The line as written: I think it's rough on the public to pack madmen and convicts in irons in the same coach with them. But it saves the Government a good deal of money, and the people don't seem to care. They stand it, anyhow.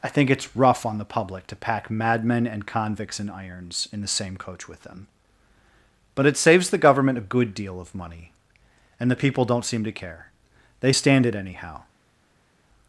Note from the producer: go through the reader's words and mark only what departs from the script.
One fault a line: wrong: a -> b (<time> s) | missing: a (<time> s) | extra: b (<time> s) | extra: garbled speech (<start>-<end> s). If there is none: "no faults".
no faults